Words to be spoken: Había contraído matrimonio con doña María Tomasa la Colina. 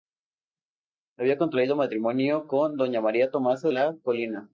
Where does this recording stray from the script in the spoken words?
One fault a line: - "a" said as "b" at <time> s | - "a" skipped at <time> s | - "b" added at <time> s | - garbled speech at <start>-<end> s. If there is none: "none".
none